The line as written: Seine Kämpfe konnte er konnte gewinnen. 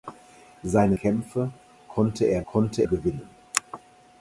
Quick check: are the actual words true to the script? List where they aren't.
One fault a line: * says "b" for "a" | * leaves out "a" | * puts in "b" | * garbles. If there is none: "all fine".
all fine